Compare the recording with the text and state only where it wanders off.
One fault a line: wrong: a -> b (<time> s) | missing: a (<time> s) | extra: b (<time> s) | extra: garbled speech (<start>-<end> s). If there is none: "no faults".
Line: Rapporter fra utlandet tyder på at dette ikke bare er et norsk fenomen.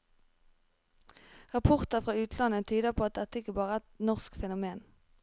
no faults